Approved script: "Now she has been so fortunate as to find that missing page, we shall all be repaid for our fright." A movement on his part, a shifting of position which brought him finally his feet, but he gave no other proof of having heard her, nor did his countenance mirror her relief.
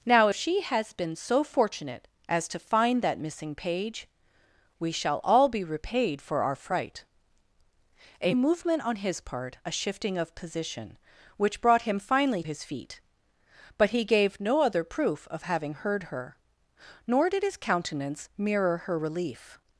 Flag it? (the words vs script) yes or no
no